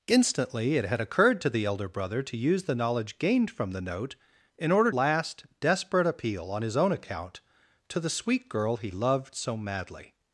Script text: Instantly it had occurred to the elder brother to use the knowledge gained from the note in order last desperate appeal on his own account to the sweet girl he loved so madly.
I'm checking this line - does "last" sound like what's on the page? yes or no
yes